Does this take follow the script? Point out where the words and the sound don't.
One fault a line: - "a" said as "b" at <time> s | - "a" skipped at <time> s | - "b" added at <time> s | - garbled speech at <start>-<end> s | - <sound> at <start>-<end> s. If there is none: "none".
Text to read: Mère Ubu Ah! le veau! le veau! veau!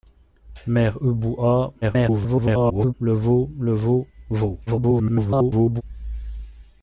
- garbled speech at 1.8-2.9 s
- garbled speech at 4.7-5.8 s